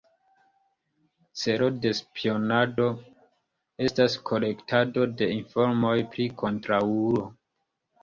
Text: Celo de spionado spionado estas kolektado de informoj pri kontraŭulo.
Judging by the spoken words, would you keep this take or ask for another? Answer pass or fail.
fail